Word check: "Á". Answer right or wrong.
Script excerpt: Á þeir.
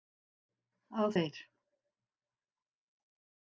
right